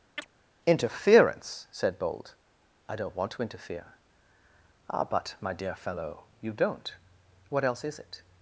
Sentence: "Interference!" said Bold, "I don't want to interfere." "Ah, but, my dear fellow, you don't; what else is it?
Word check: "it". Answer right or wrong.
right